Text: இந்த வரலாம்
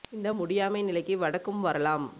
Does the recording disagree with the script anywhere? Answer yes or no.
yes